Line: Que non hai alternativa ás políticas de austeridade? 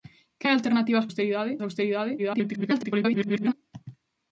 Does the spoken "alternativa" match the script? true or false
true